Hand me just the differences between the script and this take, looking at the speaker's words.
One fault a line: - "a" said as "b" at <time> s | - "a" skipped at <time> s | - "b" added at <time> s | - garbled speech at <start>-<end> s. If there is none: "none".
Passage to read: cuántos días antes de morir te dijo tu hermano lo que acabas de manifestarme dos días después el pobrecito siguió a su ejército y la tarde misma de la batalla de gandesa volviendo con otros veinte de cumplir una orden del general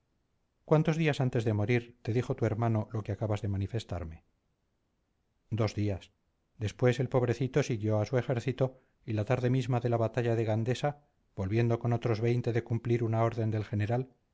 none